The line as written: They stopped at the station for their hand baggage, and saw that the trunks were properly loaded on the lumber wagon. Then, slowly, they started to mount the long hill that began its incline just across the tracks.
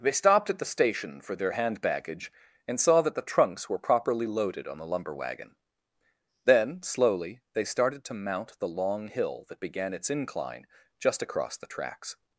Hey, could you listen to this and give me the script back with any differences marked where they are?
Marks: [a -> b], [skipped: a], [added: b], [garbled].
They stopped at the station for their hand baggage, and saw that the trunks were properly loaded on the lumber wagon. Then, slowly, they started to mount the long hill that began its incline just across the tracks.